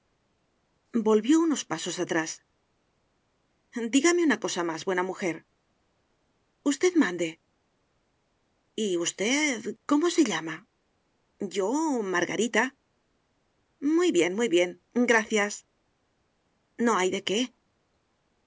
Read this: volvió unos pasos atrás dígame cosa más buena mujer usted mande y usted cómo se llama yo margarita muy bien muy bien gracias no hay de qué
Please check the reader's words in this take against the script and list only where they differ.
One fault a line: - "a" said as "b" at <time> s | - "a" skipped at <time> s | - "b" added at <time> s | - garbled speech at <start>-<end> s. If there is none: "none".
- "una" added at 4.2 s